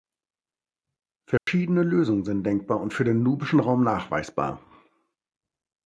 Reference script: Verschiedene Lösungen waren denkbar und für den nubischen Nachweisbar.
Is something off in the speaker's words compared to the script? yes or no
yes